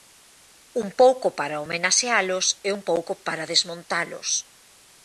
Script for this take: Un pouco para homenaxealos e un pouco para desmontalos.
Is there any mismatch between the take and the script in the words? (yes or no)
no